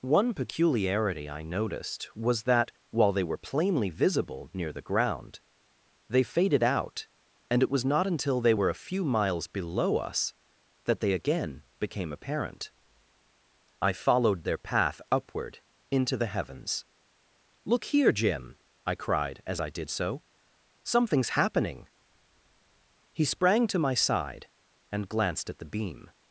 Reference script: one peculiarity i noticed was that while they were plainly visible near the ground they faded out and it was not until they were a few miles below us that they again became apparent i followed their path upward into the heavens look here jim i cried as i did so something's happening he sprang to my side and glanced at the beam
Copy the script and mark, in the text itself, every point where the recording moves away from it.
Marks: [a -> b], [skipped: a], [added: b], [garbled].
one peculiarity i noticed was that while they were plainly visible near the ground they faded out and it was not until they were a few miles below us that they again became apparent i followed their path upward into the heavens look here jim i cried as i did so something's happening he sprang to my side and glanced at the beam